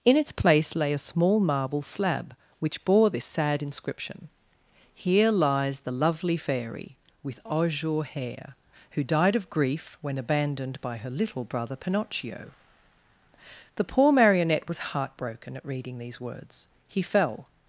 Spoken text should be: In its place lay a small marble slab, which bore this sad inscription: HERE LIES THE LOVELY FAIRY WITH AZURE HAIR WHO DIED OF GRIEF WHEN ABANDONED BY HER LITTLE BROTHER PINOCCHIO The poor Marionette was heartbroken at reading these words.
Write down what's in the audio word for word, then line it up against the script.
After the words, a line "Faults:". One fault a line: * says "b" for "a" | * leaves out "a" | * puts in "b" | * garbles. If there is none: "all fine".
In its place lay a small marble slab, which bore this sad inscription: HERE LIES THE LOVELY FAIRY WITH AZURE HAIR WHO DIED OF GRIEF WHEN ABANDONED BY HER LITTLE BROTHER PINOCCHIO The poor Marionette was heartbroken at reading these words. He fell
Faults:
* puts in "He fell"